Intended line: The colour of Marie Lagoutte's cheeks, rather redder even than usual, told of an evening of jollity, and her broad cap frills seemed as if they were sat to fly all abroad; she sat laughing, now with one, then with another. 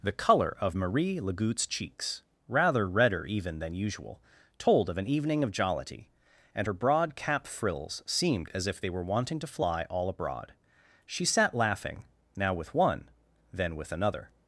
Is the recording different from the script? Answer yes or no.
yes